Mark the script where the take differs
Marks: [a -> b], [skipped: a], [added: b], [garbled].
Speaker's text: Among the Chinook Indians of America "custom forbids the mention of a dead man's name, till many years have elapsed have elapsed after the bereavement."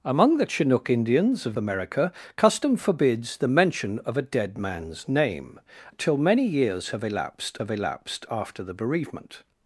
Among the Chinook Indians of America "custom forbids the mention of a dead man's name, till many years have elapsed have elapsed after the bereavement."